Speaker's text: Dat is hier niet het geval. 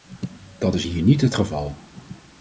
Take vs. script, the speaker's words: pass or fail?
pass